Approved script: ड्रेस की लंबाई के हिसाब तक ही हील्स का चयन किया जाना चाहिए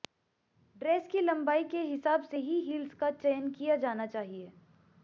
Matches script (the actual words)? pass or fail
fail